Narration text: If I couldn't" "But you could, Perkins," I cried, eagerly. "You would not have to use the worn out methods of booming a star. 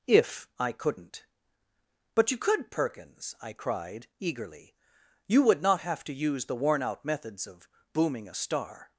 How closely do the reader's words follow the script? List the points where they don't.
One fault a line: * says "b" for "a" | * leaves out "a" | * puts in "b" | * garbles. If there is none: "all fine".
all fine